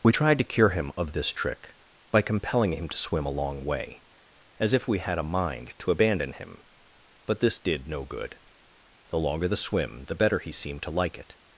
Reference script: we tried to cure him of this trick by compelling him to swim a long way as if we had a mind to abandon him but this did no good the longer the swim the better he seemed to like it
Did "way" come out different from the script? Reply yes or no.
no